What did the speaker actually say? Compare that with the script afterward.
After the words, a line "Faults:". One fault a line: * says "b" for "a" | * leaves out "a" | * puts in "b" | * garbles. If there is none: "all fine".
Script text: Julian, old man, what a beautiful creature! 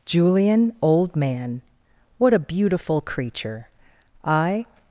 Julian, old man, what a beautiful creature! I
Faults:
* puts in "I"